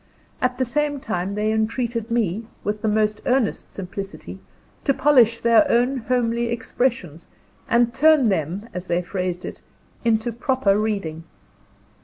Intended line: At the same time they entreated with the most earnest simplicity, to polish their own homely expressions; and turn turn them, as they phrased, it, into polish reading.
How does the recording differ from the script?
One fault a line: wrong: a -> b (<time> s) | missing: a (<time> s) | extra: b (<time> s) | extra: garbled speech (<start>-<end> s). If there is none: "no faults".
extra: me (2.1 s)
missing: turn (8.3 s)
wrong: polish -> proper (10.3 s)